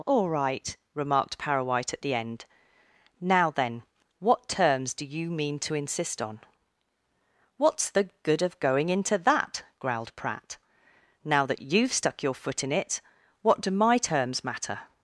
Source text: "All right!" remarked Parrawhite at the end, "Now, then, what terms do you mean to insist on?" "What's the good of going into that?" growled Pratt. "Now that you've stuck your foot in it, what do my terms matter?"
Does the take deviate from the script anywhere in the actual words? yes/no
no